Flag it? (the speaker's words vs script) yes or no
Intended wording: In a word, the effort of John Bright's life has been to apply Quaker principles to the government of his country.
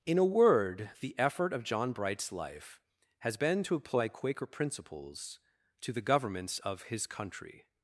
yes